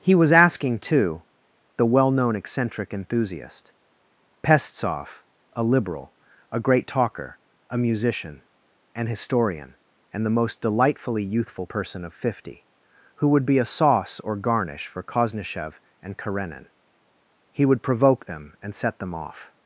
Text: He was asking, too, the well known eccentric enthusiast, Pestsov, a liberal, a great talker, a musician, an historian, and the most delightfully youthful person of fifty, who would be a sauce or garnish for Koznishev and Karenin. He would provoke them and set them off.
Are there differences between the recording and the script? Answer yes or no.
no